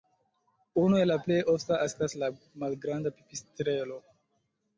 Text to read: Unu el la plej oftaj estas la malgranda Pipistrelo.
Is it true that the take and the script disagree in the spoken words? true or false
false